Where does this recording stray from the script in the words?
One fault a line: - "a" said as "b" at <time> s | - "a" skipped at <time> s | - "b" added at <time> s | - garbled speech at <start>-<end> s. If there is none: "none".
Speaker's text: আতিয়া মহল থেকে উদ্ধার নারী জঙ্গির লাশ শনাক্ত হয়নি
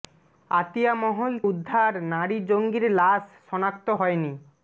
- "থেকে" skipped at 1.3 s